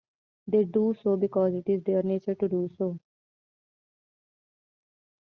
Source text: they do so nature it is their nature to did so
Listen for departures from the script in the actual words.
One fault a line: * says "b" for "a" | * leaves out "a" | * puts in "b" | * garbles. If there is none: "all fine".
* says "because" for "nature"
* says "do" for "did"